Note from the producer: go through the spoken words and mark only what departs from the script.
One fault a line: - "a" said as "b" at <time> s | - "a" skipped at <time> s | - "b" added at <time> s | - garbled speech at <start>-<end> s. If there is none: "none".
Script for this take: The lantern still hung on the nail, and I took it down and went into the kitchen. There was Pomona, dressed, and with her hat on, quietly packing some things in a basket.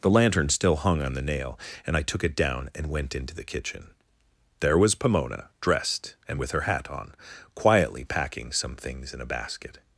none